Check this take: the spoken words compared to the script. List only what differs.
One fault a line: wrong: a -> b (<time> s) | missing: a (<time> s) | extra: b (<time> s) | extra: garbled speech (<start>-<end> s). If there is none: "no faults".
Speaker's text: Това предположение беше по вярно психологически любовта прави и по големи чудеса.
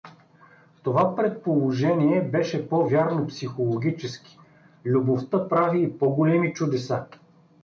no faults